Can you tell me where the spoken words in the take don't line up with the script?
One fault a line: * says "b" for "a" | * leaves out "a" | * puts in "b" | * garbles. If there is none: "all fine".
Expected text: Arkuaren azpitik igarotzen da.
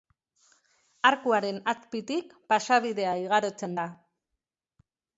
* puts in "pasabidea"